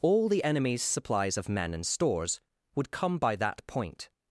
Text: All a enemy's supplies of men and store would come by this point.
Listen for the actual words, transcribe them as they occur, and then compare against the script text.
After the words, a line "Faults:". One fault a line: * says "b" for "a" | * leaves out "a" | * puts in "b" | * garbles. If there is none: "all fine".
All the enemy's supplies of men and stores would come by that point.
Faults:
* says "the" for "a"
* says "stores" for "store"
* says "that" for "this"